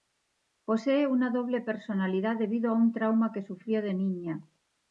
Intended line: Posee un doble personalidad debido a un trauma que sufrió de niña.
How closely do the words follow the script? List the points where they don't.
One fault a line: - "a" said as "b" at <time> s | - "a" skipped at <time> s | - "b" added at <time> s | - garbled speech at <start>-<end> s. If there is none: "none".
- "un" said as "una" at 1.1 s